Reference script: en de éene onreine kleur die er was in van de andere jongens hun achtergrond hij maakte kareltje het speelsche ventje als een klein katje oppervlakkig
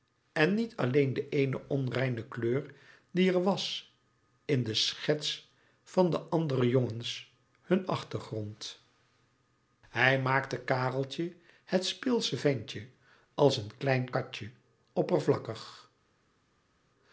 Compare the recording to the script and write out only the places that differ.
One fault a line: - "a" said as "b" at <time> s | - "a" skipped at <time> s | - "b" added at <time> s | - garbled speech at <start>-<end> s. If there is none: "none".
- "niet alleen" added at 0.5 s
- "de schets" added at 4.6 s